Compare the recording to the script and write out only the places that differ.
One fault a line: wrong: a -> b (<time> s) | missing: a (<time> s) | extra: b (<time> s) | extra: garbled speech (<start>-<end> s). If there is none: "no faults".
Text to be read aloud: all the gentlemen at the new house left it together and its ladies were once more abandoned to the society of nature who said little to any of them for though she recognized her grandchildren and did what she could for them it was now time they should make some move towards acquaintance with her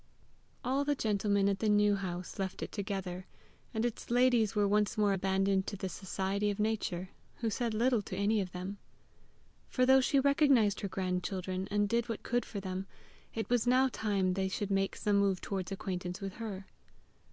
missing: she (12.2 s)